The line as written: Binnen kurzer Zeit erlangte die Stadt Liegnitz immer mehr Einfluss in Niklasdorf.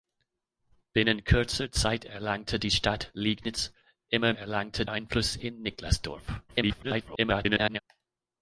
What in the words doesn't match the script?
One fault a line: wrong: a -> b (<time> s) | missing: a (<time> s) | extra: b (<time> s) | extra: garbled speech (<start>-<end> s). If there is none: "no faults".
wrong: mehr -> erlangte (4.3 s)
extra: garbled speech (6.5-7.8 s)